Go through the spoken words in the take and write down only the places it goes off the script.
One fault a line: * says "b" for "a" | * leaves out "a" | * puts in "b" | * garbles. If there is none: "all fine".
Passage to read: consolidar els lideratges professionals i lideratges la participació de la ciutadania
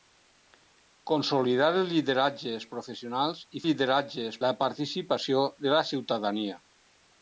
all fine